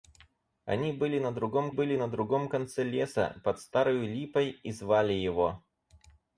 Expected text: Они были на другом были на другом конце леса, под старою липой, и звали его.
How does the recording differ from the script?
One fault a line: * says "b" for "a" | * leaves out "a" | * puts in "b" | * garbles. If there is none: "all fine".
all fine